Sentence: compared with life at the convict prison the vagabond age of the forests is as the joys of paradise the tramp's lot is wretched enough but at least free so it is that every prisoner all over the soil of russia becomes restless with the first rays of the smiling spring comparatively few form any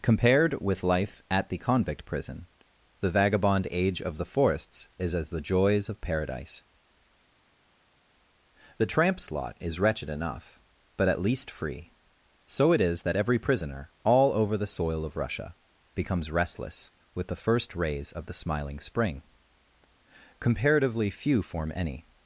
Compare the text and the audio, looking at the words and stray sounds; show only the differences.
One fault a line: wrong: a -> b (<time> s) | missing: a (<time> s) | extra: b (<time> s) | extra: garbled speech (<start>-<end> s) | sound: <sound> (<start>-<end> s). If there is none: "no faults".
no faults